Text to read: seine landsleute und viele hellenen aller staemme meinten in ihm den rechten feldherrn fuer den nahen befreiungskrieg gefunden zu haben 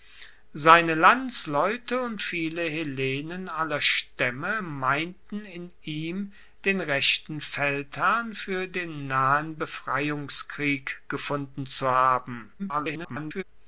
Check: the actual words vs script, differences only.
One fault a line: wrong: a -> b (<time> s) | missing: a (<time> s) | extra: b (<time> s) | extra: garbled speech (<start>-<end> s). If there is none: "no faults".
extra: garbled speech (12.6-13.4 s)